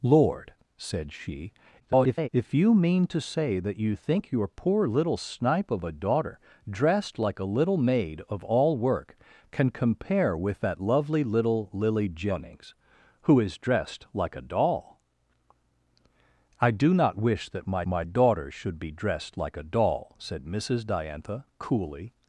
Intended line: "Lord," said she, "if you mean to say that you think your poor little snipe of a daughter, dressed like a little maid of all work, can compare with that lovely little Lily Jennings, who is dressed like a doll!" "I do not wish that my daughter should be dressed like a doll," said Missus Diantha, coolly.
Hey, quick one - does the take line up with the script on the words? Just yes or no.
no